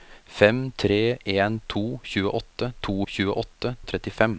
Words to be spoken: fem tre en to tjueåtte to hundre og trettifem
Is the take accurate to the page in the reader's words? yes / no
no